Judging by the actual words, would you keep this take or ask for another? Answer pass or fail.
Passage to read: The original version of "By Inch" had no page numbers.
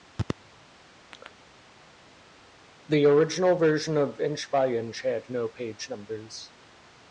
fail